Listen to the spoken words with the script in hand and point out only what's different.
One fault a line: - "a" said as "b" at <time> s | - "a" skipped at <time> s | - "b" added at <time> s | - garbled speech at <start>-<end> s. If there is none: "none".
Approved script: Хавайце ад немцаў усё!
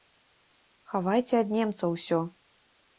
none